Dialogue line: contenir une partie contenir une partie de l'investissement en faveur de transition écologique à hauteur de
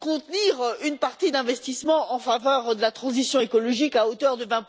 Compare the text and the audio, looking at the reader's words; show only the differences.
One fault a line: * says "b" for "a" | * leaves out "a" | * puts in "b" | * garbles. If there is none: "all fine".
* leaves out "contenir une partie"
* puts in "la"